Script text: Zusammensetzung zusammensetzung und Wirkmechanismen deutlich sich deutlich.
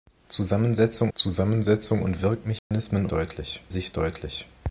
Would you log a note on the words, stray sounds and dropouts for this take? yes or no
yes